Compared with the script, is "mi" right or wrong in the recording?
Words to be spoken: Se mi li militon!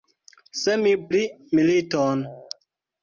right